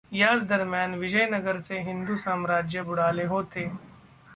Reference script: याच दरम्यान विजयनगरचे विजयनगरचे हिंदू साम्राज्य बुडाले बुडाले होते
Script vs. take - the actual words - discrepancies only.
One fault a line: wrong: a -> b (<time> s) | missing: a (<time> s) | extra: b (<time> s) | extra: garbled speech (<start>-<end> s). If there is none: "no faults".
missing: विजयनगरचे (1.8 s)
missing: बुडाले (3.3 s)